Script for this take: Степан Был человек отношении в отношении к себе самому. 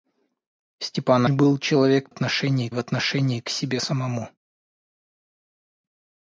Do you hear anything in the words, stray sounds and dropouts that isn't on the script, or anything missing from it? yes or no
no